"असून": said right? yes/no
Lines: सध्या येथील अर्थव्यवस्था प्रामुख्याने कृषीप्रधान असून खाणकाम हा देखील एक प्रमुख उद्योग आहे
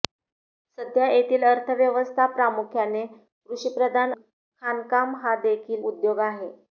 no